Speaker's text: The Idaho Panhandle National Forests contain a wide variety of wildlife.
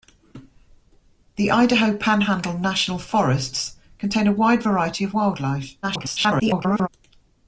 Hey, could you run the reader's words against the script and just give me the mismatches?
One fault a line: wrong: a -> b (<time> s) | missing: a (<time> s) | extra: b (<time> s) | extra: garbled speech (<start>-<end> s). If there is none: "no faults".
extra: garbled speech (5.8-6.9 s)